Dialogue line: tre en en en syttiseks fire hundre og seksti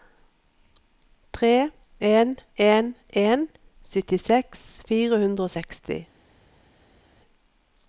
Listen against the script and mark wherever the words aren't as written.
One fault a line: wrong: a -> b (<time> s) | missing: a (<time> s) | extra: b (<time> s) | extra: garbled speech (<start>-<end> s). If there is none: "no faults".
no faults